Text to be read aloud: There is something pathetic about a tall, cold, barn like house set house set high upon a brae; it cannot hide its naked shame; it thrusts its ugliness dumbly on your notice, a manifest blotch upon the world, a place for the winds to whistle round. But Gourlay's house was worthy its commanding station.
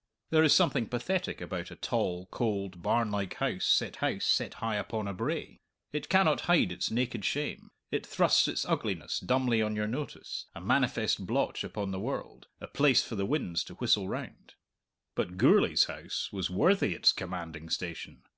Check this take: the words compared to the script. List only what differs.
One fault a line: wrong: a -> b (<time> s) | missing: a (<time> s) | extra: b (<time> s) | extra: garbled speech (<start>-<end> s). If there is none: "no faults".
no faults